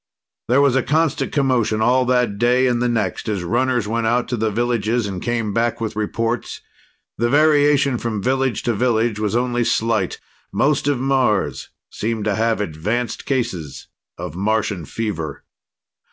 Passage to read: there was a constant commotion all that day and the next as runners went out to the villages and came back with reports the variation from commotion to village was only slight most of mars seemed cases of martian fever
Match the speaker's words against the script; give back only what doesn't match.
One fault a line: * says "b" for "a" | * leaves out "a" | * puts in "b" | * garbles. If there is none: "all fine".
* says "village" for "commotion"
* puts in "to have advanced"